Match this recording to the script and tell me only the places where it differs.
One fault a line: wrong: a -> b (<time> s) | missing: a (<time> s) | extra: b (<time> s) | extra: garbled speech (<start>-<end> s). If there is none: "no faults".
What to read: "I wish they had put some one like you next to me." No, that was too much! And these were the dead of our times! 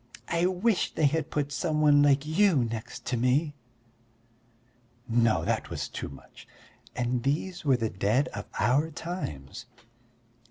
no faults